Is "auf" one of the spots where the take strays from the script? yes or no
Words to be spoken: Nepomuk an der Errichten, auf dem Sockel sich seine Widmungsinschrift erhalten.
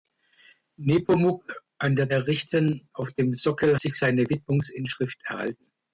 no